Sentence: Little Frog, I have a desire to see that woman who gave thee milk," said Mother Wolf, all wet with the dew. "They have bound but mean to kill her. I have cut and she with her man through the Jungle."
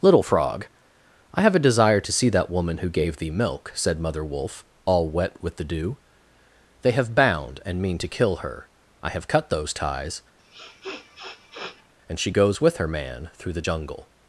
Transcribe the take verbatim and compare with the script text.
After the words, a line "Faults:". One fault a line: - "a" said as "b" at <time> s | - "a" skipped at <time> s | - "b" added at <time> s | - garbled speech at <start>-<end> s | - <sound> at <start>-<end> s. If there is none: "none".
Little Frog, I have a desire to see that woman who gave thee milk," said Mother Wolf, all wet with the dew. "They have bound and mean to kill her. I have cut those ties, and she goes with her man through the Jungle."
Faults:
- "but" said as "and" at 7.7 s
- "those ties" added at 9.5 s
- sniff at 10.4-11.9 s
- "goes" added at 12.3 s